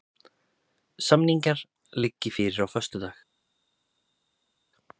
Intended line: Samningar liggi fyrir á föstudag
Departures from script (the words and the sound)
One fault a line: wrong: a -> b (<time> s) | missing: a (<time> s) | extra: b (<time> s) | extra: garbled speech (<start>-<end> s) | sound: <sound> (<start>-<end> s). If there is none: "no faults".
no faults